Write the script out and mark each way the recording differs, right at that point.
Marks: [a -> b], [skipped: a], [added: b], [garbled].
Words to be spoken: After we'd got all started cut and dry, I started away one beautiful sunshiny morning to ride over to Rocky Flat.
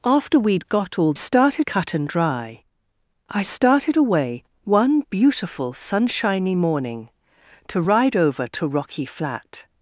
After we'd got all started cut and dry, I started away one beautiful sunshiny morning to ride over to Rocky Flat.